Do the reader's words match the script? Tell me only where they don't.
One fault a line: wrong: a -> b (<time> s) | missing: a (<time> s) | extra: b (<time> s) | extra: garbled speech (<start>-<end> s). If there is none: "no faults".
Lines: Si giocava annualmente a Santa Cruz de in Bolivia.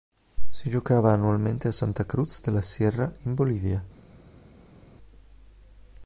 extra: la Sierra (2.5 s)